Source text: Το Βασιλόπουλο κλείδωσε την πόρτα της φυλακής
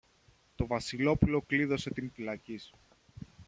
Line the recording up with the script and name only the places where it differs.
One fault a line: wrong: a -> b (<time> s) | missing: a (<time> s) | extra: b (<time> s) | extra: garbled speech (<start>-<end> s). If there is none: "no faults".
missing: πόρτα της (2.1 s)